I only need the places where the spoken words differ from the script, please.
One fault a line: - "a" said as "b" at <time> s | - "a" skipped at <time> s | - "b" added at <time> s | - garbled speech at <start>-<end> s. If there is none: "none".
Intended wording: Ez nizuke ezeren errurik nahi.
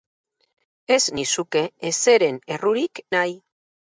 none